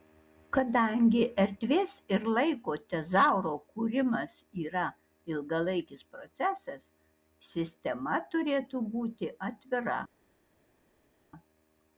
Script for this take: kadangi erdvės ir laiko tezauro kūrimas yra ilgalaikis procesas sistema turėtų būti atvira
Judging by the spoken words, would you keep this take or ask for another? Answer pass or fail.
pass